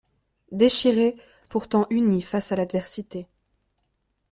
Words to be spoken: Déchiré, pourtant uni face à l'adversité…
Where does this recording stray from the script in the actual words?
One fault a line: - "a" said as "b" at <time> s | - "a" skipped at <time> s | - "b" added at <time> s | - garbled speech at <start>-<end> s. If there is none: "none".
none